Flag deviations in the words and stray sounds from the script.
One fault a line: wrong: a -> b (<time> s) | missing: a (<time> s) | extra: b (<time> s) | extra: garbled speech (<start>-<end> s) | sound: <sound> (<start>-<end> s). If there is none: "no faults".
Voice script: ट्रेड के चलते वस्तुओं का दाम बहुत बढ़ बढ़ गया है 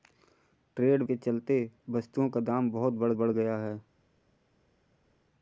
no faults